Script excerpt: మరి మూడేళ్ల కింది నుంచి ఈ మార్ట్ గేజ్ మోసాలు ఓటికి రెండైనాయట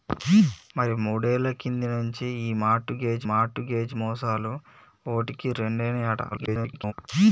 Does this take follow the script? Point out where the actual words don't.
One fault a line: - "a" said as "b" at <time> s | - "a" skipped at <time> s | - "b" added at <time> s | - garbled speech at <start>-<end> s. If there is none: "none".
- "మార్ట్ గేజ్" added at 3.3 s
- garbled speech at 6.3-6.9 s